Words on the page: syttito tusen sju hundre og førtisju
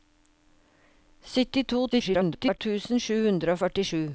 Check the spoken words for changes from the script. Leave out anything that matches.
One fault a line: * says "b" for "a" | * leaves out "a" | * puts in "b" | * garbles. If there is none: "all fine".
* garbles